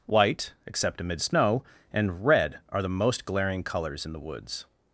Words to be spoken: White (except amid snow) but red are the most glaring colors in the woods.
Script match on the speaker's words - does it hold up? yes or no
no